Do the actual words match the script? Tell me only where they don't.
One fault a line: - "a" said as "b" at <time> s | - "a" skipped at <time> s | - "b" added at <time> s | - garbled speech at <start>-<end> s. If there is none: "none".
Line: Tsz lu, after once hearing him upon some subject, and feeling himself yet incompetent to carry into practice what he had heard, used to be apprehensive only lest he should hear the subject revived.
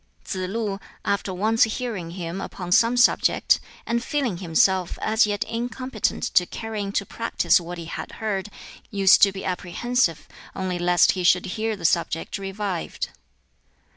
- "as" added at 5.0 s